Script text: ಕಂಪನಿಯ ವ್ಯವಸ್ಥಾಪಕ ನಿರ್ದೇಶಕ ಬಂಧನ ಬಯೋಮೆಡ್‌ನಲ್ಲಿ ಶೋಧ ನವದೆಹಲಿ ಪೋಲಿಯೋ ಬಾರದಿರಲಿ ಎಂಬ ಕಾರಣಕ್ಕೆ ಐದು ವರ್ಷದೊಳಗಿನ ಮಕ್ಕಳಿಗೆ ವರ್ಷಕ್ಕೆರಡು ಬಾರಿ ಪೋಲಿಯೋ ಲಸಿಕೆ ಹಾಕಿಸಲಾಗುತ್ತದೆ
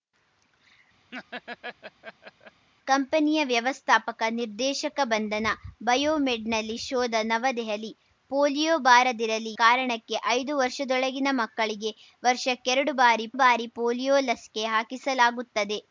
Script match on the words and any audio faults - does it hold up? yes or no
no